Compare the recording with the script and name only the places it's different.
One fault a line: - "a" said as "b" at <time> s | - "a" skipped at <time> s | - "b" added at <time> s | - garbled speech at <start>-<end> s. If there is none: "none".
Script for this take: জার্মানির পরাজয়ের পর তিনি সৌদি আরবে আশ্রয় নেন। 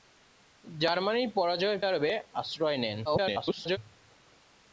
- "পর তিনি সৌদি" skipped at 1.8 s
- garbled speech at 3.0-3.8 s